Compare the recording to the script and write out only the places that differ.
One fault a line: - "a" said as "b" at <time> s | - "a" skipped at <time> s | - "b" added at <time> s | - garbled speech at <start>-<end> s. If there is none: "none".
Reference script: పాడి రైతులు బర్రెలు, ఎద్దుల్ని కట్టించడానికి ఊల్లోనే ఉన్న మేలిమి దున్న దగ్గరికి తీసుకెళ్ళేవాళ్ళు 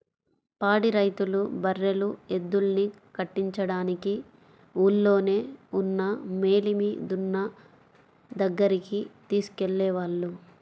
none